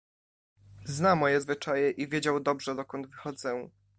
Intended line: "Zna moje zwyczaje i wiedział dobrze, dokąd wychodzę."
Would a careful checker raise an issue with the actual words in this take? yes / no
no